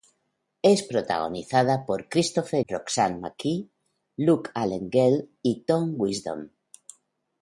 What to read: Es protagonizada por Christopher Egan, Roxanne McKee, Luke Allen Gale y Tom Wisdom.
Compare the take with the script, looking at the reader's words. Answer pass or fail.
fail